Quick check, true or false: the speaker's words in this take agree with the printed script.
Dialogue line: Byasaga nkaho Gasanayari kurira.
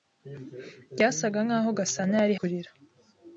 true